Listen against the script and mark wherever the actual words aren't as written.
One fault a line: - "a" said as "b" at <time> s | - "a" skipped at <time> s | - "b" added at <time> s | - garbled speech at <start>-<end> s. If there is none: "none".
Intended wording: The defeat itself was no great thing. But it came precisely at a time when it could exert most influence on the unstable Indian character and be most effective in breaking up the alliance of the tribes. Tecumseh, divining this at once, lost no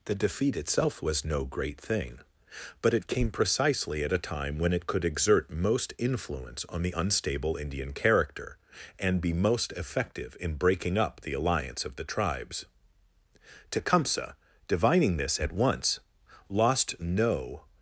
none